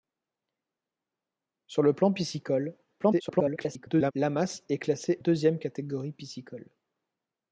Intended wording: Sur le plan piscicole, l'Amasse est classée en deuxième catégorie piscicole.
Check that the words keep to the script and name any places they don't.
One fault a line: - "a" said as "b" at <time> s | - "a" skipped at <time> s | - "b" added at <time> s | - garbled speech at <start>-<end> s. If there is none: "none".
- garbled speech at 3.0-4.1 s
- "en" skipped at 5.2 s